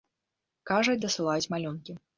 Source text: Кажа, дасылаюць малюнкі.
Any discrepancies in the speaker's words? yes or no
no